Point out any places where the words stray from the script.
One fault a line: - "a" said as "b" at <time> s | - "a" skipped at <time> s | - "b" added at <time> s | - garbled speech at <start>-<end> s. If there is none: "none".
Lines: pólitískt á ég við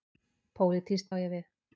none